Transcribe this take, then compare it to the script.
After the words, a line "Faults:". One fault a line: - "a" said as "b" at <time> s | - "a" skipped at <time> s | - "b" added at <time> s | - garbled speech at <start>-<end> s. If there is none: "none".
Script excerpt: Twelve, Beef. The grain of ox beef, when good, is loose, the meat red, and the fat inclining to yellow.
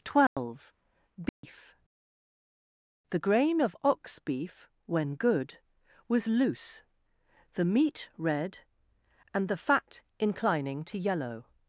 Twelve, Beef. The grain of ox beef, when good, was loose, the meat red, and the fat inclining to yellow.
Faults:
- "is" said as "was" at 6.1 s